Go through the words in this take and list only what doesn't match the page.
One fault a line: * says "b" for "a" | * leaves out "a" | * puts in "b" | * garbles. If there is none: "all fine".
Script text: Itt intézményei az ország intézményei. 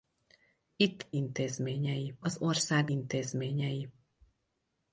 all fine